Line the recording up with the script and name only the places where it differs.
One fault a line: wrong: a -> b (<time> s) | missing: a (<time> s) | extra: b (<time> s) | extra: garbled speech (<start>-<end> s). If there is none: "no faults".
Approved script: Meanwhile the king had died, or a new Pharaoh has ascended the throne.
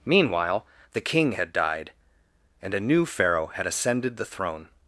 wrong: or -> and (2.6 s)
wrong: has -> had (3.5 s)